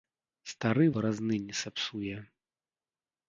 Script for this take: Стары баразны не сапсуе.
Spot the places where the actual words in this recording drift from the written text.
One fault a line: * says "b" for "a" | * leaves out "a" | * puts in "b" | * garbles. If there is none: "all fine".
all fine